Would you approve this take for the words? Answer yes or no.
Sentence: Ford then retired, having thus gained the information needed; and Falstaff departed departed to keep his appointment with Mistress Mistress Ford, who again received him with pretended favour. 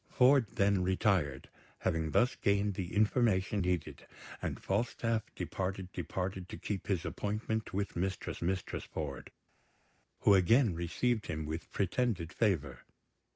yes